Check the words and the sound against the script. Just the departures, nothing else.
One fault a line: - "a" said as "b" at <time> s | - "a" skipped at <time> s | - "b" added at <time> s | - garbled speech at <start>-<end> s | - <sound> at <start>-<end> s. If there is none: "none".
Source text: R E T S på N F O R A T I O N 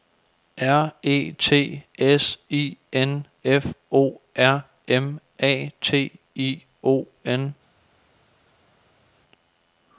- "på" said as "I" at 2.5 s
- "M" added at 4.9 s